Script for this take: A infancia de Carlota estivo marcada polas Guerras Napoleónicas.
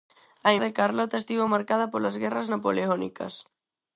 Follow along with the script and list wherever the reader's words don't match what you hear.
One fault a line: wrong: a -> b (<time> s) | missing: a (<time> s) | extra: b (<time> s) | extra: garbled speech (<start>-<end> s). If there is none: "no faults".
missing: infancia (0.5 s)